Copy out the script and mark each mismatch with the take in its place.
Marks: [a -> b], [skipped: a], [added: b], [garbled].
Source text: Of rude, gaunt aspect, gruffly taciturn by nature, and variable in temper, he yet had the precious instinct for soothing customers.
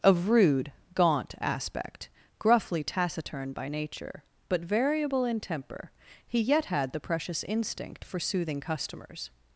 Of rude, gaunt aspect, gruffly taciturn by nature, [and -> but] variable in temper, he yet had the precious instinct for soothing customers.